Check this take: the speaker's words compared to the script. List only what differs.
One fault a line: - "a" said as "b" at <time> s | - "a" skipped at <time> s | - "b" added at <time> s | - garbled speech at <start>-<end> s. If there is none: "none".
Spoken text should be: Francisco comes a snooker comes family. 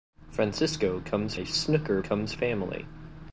none